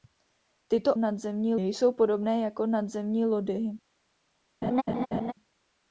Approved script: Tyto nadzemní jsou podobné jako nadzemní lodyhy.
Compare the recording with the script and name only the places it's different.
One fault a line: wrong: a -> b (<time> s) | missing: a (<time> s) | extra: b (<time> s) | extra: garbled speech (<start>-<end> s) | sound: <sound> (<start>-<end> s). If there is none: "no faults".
sound: laugh (4.6-5.3 s)